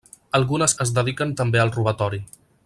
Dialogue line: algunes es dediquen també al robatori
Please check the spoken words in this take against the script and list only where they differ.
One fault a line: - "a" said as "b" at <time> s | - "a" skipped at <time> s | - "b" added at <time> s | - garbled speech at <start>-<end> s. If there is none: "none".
none